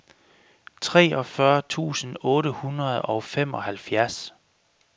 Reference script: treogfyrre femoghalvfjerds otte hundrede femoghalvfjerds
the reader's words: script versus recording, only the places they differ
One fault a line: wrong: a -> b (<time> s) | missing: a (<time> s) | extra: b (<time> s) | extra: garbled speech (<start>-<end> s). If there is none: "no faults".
wrong: femoghalvfjerds -> tusind (1.7 s)
extra: og (3.0 s)